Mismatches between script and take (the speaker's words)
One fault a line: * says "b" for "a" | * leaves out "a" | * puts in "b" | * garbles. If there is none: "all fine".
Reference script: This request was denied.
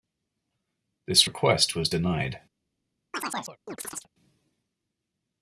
all fine